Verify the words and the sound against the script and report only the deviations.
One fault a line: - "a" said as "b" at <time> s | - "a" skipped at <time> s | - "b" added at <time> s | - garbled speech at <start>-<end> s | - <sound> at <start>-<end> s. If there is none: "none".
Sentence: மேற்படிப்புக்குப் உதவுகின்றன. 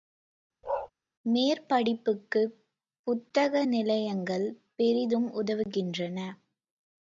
- bark at 0.6-0.9 s
- "புத்தக நிலையங்கள் பெரிதும்" added at 3.1 s